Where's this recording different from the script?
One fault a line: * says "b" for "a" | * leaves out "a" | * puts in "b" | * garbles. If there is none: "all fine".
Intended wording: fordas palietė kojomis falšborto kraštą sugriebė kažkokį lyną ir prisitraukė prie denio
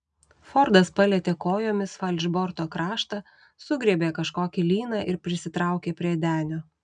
all fine